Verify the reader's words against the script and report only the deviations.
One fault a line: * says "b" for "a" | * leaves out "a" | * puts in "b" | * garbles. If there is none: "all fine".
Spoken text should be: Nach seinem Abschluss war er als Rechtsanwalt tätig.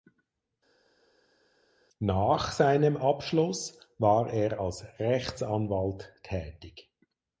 all fine